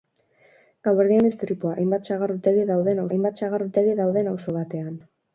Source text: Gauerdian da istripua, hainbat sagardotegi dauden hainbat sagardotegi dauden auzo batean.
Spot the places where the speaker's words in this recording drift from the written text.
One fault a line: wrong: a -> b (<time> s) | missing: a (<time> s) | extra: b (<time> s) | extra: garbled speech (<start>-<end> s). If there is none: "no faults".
no faults